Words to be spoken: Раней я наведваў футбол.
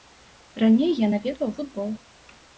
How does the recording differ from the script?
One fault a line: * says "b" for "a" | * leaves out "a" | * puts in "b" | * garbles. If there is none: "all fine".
all fine